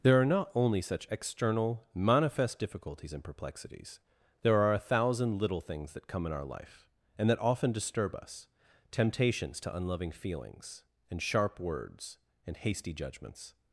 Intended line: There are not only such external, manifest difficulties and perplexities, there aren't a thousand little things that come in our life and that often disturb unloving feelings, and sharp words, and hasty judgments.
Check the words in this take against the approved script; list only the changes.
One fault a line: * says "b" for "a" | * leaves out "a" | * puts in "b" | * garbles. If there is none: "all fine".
* says "are" for "aren't"
* puts in "us temptations to"